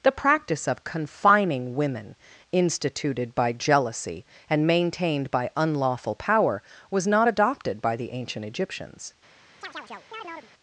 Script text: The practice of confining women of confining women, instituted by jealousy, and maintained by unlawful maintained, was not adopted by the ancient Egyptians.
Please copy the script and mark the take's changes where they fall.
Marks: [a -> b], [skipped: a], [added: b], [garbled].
The practice of confining women [skipped: of confining women,] instituted by jealousy, and maintained by unlawful [maintained, -> power] was not adopted by the ancient Egyptians.